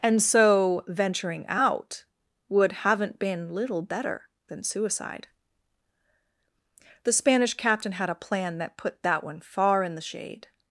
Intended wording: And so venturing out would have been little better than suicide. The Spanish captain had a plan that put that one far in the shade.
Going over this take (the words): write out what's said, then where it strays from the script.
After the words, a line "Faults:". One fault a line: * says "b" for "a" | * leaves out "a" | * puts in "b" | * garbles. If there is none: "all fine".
And so venturing out would haven't been little better than suicide. The Spanish captain had a plan that put that one far in the shade.
Faults:
* says "haven't" for "have"